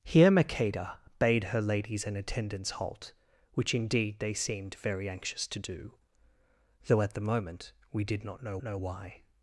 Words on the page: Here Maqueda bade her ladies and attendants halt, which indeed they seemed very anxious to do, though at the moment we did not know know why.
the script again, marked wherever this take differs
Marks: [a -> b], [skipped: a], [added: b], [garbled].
Here Maqueda bade her ladies and attendants halt, which indeed they seemed very anxious to do, though at the moment we did not know know why.